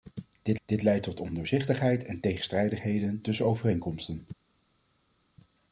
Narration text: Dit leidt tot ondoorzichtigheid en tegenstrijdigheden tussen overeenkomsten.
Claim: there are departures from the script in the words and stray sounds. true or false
true